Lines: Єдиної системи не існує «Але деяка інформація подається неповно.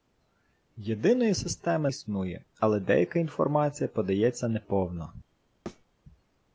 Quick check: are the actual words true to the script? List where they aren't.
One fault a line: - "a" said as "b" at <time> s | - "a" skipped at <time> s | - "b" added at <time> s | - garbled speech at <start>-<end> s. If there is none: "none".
- "не" skipped at 1.9 s